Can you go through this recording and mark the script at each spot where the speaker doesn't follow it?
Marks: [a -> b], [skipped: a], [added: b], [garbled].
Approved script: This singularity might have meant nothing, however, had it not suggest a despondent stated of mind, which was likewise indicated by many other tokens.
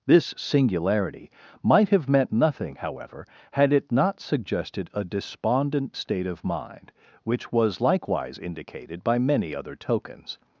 This singularity might have meant nothing, however, had it not [suggest -> suggested] a despondent [stated -> state] of mind, which was likewise indicated by many other tokens.